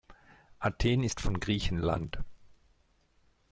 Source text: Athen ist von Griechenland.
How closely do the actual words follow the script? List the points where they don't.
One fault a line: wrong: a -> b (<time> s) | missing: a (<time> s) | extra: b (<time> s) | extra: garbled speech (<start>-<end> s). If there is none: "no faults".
no faults